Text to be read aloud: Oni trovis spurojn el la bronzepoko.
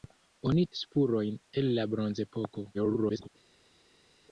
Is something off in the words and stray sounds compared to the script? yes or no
yes